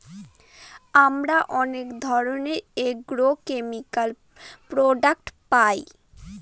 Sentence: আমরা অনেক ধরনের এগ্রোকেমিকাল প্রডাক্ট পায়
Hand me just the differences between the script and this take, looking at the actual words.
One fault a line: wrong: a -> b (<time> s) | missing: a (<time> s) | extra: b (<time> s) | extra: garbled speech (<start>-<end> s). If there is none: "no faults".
no faults